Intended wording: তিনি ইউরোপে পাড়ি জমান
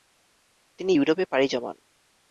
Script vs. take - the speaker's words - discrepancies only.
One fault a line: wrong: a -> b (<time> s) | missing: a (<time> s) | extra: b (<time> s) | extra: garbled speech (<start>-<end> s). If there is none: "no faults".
no faults